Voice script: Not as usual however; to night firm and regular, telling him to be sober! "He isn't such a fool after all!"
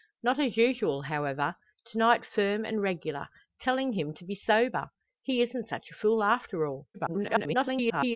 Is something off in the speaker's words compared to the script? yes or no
yes